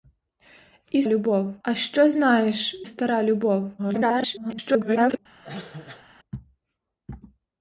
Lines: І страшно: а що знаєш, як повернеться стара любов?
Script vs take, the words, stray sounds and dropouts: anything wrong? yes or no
yes